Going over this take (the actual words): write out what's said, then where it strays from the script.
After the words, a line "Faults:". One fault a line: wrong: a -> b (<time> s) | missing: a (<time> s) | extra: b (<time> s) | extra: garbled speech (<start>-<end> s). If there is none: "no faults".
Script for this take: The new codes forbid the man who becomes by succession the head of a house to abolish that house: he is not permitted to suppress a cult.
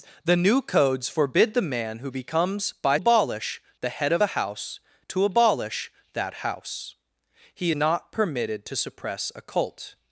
The new codes forbid the man who becomes by abolish the head of a house to abolish that house: he not permitted to suppress a cult.
Faults:
wrong: succession -> abolish (3.0 s)
missing: is (7.7 s)